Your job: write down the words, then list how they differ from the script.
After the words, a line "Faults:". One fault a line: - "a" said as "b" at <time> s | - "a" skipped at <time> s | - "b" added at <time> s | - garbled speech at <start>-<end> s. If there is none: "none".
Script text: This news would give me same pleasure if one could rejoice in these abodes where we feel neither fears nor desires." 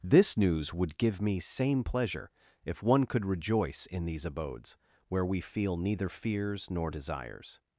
This news would give me same pleasure if one could rejoice in these abodes where we feel neither fears nor desires."
Faults:
none